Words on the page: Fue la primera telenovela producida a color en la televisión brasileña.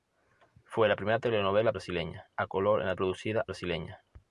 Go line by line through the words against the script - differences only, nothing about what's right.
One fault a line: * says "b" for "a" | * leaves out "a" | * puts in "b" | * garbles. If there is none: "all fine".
* says "brasileña" for "producida"
* says "producida" for "televisión"